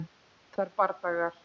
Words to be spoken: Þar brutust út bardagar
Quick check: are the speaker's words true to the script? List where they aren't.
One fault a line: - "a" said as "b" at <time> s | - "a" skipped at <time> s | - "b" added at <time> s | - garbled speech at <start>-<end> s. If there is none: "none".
- "brutust út" skipped at 0.7 s